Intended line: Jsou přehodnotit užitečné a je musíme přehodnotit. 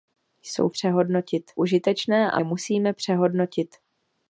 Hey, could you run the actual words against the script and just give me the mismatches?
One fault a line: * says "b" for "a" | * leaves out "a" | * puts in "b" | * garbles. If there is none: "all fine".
all fine